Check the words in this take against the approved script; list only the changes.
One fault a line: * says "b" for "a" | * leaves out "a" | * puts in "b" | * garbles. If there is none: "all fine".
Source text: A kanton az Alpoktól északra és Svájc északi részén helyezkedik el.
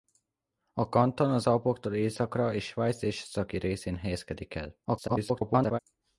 * garbles